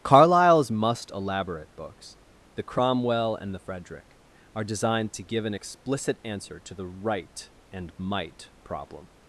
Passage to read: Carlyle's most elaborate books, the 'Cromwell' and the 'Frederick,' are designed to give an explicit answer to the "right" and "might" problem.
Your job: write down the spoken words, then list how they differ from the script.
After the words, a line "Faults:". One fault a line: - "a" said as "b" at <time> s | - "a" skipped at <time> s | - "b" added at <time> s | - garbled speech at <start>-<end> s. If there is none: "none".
Carlyle's must elaborate books, the 'Cromwell' and the 'Frederick,' are designed to give an explicit answer to the "right" and "might" problem.
Faults:
- "most" said as "must" at 0.7 s